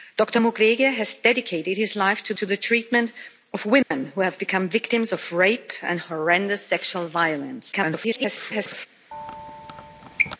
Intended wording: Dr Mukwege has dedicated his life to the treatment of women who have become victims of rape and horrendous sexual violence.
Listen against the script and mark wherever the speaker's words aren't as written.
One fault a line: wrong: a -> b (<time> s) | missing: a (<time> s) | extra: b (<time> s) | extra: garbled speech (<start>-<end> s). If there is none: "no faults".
extra: to (2.4 s)
extra: garbled speech (7.7-8.9 s)